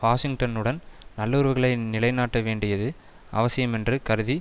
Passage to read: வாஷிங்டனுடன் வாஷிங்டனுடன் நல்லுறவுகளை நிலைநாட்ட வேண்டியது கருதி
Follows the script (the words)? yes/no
no